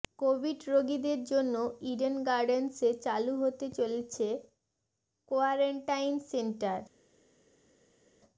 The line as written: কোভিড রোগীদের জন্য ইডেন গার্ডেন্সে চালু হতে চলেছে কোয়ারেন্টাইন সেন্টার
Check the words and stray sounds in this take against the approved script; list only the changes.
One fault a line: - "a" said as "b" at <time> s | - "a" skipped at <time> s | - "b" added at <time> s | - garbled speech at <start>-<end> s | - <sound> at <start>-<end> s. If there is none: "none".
none